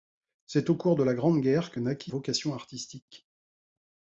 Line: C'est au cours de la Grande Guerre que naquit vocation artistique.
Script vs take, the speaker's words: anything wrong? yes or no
no